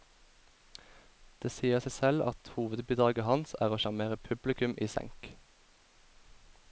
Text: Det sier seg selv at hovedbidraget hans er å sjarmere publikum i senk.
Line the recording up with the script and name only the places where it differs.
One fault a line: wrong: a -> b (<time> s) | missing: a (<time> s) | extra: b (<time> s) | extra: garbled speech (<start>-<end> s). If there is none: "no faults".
no faults